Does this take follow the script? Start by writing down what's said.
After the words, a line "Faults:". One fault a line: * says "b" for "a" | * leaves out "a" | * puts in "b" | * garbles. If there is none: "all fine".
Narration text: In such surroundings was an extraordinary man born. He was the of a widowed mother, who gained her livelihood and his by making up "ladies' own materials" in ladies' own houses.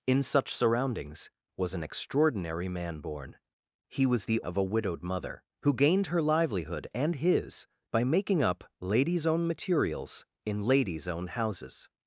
In such surroundings was an extraordinary man born. He was the of a widowed mother, who gained her livelihood and his by making up "ladies' own materials" in ladies' own houses.
Faults:
all fine